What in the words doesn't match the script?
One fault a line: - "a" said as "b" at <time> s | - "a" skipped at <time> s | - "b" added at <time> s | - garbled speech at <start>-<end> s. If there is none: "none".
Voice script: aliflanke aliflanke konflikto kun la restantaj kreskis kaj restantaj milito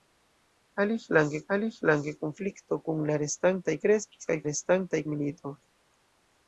none